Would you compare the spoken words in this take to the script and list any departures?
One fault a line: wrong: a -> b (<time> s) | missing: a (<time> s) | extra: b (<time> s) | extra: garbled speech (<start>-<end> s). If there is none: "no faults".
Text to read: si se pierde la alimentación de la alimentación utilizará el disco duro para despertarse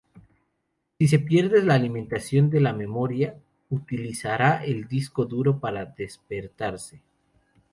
wrong: alimentación -> memoria (2.7 s)